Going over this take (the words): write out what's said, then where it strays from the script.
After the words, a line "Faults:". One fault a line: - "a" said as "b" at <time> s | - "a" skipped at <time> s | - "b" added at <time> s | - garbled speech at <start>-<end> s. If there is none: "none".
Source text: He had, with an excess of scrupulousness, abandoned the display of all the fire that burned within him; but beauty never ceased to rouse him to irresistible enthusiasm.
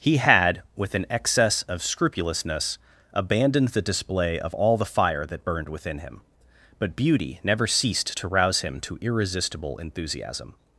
He had, with an excess of scrupulousness, abandoned the display of all the fire that burned within him; but beauty never ceased to rouse him to irresistible enthusiasm.
Faults:
none